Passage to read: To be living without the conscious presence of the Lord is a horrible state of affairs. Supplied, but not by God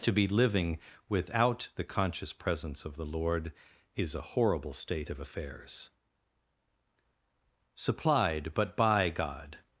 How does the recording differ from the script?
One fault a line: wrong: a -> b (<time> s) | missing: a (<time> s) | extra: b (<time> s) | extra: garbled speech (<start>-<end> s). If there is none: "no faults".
missing: not (8.8 s)